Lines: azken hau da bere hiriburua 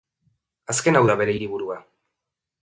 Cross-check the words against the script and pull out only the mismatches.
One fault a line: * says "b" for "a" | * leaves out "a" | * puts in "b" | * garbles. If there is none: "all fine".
all fine